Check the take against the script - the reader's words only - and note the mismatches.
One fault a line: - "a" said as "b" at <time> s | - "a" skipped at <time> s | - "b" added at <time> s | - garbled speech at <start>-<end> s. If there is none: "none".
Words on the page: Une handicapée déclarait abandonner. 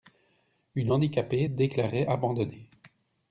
none